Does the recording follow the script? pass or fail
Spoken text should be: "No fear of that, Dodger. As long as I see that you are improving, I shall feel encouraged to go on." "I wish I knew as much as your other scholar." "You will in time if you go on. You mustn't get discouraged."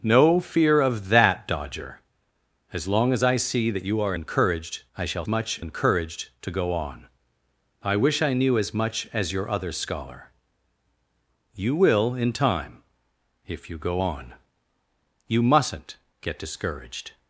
fail